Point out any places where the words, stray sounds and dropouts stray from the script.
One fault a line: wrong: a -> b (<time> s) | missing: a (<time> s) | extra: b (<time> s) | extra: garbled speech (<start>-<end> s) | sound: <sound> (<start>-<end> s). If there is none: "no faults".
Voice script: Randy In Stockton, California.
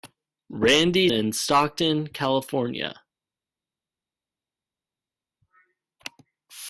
no faults